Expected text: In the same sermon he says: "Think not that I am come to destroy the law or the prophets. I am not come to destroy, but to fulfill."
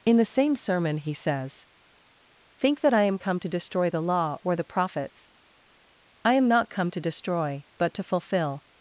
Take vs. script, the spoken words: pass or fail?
fail